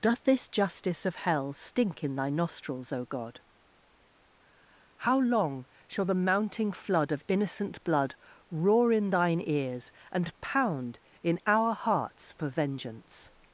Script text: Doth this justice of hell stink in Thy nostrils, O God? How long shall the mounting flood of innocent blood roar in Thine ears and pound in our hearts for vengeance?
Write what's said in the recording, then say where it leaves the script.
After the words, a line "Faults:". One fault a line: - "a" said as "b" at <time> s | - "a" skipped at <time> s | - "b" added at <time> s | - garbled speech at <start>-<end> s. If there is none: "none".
Doth this justice of hell stink in Thy nostrils, O God? How long shall the mounting flood of innocent blood roar in Thine ears and pound in our hearts for vengeance?
Faults:
none